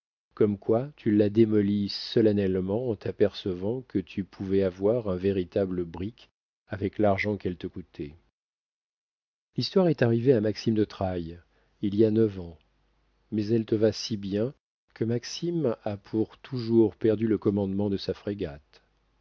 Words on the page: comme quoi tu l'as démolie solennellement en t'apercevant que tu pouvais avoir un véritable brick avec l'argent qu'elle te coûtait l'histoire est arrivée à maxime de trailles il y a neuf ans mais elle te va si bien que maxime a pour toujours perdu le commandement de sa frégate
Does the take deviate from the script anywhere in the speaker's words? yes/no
no